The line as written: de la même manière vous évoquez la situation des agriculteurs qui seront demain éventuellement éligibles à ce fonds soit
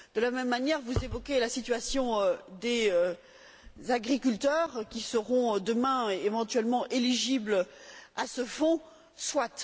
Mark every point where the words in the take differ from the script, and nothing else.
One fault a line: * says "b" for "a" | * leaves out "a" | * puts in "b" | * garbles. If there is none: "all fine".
all fine